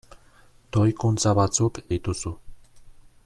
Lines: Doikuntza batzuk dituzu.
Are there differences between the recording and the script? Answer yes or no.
no